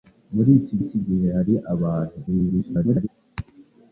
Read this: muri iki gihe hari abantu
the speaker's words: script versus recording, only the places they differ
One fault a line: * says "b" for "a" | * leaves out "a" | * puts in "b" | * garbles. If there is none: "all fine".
* puts in "iki"
* garbles